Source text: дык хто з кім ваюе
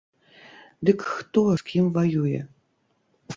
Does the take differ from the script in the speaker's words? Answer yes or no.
no